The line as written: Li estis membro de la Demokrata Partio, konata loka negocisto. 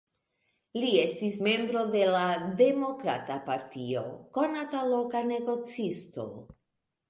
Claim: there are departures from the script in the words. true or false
false